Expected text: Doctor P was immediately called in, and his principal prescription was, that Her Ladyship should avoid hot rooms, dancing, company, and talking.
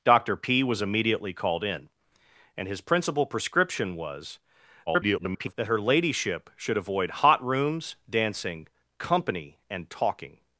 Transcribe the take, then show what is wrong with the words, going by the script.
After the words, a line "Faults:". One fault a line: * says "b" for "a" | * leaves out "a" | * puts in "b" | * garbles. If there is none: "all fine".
Doctor P was immediately called in, and his principal prescription was, [garbled] that Her Ladyship should avoid hot rooms, dancing, company, and talking.
Faults:
* garbles